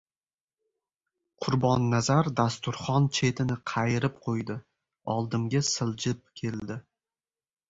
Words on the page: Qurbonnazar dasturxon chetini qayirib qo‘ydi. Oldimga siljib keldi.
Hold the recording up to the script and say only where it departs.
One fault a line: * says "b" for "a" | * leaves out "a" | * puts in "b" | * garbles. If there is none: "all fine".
all fine